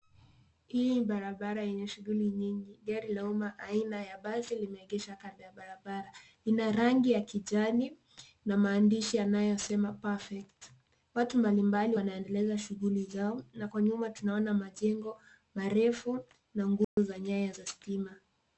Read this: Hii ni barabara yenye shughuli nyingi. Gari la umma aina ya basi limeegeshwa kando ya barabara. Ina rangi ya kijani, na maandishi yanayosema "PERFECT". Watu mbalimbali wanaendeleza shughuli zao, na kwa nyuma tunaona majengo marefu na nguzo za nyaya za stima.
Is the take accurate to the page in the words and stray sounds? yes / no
no